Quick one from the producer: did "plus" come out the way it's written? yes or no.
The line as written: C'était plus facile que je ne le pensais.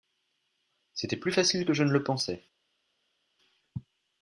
yes